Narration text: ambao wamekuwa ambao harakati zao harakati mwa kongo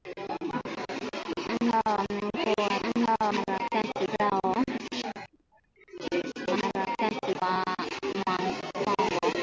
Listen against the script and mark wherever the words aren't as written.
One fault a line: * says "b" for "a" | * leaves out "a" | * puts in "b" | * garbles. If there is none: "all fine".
all fine